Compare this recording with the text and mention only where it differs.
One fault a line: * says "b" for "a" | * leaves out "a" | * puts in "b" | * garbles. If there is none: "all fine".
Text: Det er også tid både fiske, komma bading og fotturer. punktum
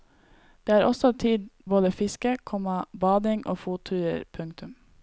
all fine